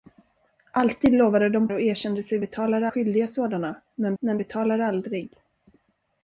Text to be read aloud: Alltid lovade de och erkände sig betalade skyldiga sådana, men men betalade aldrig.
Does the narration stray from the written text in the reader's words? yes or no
no